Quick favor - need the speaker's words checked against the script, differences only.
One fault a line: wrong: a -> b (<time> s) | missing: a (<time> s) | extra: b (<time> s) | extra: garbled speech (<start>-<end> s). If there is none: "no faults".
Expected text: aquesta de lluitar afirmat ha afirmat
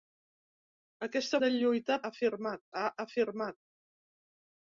no faults